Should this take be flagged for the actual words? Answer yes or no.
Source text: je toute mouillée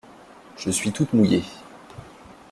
yes